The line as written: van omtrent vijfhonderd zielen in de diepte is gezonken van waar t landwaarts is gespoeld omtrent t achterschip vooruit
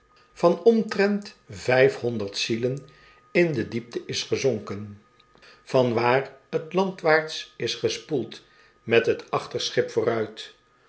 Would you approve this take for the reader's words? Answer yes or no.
no